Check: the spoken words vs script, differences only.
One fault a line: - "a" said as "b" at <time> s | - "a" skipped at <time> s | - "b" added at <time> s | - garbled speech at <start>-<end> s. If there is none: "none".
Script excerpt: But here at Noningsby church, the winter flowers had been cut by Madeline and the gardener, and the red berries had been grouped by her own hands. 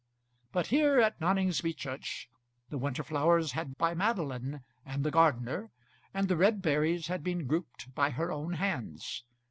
- "been cut" skipped at 3.7 s